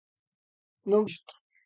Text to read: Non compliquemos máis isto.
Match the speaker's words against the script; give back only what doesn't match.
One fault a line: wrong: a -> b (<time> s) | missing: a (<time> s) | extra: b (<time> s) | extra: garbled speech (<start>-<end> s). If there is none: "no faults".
missing: compliquemos máis (1.0 s)